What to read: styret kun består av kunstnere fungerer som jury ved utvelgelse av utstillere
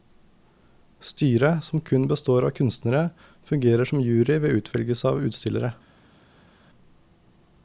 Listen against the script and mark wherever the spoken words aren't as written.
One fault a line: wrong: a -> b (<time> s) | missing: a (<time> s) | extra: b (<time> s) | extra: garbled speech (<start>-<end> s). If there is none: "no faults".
extra: som (1.6 s)